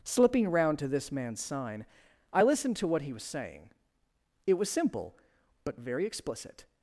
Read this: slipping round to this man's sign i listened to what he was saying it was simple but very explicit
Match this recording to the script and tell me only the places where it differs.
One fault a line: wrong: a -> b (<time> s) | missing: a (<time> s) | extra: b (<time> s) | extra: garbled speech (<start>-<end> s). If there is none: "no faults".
no faults